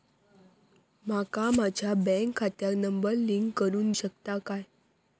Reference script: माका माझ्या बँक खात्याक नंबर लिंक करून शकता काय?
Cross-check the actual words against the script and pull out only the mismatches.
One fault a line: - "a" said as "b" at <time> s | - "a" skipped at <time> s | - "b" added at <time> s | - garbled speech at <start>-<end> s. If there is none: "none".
none